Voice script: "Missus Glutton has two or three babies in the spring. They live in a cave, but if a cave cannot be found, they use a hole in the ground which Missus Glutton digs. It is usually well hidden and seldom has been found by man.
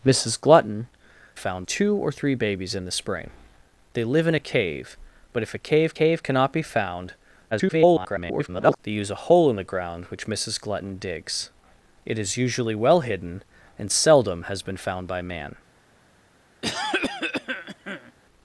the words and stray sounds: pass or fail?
fail